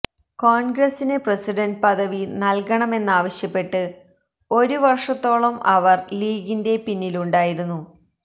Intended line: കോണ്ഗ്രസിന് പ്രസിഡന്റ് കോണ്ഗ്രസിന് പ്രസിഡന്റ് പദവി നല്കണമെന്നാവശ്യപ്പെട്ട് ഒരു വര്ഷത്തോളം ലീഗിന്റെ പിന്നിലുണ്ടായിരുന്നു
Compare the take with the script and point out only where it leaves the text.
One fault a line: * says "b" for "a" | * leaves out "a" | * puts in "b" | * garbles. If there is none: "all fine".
* leaves out "കോണ്ഗ്രസിന് പ്രസിഡന്റ്"
* puts in "അവര്"